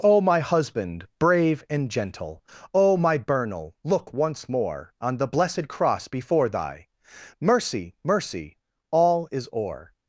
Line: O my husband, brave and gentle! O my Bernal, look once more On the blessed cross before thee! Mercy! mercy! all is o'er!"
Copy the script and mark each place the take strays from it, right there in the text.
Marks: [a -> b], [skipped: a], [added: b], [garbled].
O my husband, brave and gentle! O my Bernal, look once more On the blessed cross before [thee! -> thy] Mercy! mercy! all is o'er!"